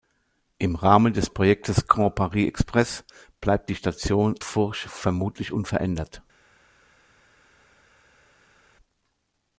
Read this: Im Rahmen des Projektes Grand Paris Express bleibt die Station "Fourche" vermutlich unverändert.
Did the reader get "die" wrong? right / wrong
right